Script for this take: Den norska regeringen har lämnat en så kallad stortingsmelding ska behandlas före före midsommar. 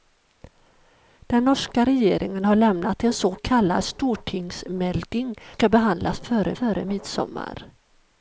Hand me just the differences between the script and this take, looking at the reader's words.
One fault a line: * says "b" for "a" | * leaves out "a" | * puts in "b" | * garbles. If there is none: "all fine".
all fine